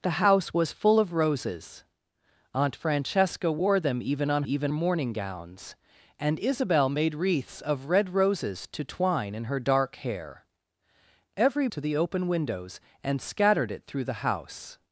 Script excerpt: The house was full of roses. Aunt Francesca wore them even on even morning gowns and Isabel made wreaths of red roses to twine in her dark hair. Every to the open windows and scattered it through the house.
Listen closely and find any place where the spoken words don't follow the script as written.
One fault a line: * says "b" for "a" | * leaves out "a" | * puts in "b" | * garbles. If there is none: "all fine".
all fine